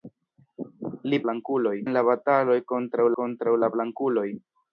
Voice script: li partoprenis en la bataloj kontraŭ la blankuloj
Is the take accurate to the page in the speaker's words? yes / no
no